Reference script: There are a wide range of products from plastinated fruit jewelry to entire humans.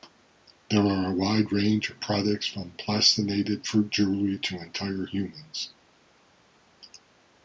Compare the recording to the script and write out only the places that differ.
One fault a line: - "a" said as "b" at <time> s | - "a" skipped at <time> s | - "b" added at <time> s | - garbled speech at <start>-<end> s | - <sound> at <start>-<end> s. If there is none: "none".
none